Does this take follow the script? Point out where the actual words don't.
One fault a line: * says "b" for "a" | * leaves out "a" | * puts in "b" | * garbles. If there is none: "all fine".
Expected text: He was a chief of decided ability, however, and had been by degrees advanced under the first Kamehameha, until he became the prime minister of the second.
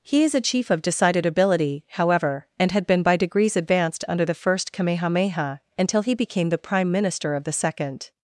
* says "is" for "was"